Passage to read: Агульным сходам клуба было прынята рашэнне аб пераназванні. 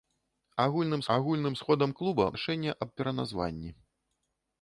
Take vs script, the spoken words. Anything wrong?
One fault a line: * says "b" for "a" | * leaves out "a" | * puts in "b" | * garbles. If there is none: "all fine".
* puts in "агульным"
* leaves out "было прынята"